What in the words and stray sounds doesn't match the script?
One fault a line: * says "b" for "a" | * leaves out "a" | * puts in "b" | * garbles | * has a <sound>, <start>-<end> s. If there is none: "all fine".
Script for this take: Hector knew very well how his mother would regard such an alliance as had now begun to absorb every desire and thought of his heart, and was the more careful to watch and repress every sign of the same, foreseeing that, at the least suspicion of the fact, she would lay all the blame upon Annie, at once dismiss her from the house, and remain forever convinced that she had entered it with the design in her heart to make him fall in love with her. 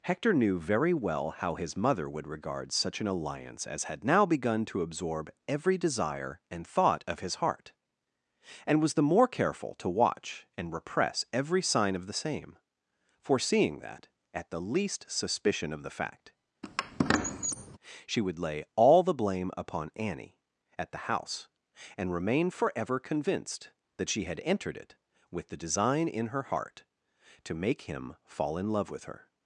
* has a squeak, 16.6-17.8 s
* leaves out "once dismiss her from"